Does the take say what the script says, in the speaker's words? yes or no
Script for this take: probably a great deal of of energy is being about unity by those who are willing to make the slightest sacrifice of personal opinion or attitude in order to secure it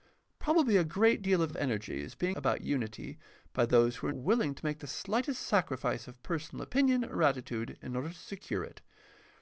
yes